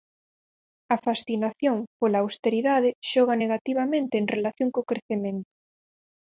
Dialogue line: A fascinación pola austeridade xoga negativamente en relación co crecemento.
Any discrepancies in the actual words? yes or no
no